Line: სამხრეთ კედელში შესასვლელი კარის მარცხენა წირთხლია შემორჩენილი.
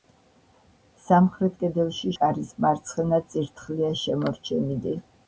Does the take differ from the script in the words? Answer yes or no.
yes